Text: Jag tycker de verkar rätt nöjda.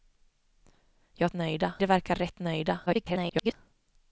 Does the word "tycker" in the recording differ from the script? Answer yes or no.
yes